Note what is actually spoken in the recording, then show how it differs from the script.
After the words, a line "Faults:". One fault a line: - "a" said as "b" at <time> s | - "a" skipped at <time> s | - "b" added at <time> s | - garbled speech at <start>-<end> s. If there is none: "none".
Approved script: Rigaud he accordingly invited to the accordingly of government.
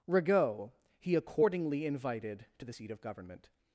Rigaud he accordingly invited to the seat of government.
Faults:
- "accordingly" said as "seat" at 2.7 s